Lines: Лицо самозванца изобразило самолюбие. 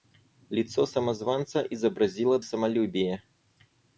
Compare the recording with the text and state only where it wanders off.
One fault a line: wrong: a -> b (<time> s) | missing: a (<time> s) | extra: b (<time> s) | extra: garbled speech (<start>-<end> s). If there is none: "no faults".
no faults